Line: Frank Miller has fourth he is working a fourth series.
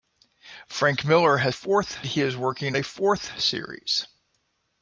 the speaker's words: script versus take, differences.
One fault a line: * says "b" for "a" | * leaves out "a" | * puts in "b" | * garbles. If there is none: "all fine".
all fine